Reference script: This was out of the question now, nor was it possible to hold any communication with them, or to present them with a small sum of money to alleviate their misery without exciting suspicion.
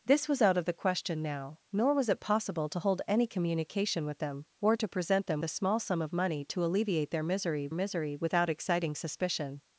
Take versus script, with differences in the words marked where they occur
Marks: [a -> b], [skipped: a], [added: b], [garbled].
This was out of the question now, nor was it possible to hold any communication with them, or to present them [skipped: with] a small sum of money to alleviate their misery [added: misery] without exciting suspicion.